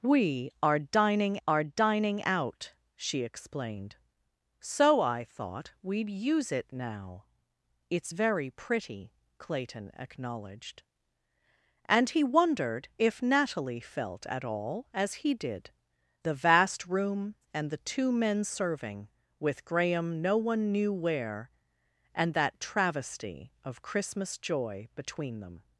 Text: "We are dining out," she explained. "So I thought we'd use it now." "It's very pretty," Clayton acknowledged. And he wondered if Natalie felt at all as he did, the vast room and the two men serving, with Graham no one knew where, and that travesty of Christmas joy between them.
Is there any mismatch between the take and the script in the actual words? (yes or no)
yes